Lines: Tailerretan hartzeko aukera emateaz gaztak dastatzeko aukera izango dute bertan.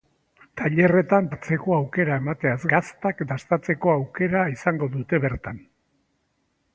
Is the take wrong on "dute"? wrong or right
right